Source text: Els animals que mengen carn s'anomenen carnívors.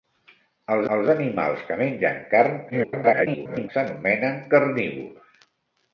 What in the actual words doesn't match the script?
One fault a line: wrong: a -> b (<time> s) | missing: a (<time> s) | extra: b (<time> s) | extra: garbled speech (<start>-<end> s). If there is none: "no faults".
extra: els (1.0 s)
extra: garbled speech (2.7-3.7 s)